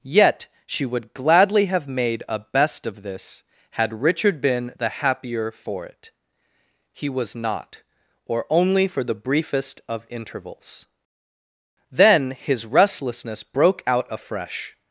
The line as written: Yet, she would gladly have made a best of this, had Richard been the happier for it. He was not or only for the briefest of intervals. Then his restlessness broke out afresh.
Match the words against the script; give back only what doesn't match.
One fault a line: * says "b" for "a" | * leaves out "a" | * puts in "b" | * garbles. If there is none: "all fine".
all fine